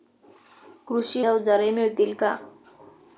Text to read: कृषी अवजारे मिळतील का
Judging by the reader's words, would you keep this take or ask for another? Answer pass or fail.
pass